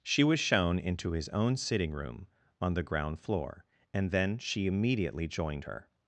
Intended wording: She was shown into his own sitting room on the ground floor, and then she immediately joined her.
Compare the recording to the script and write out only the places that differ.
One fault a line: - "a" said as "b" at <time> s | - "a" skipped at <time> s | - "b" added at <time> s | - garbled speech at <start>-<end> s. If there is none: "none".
none